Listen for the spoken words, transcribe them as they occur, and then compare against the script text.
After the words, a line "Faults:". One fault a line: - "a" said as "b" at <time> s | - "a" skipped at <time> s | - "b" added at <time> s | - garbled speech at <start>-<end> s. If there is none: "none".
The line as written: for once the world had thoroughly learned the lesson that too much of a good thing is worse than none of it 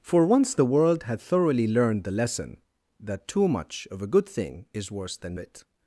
for once the world had thoroughly learned the lesson that too much of a good thing is worse than it
Faults:
- "none of" skipped at 5.4 s